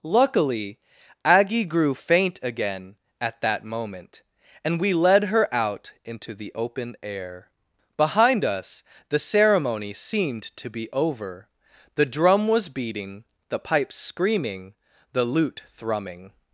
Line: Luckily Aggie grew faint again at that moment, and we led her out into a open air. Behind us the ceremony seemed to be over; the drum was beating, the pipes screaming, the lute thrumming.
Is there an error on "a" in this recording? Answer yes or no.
yes